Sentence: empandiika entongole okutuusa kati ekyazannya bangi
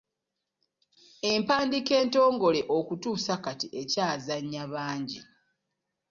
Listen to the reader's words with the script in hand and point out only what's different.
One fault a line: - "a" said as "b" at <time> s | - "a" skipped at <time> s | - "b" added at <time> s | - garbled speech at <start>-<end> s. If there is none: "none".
none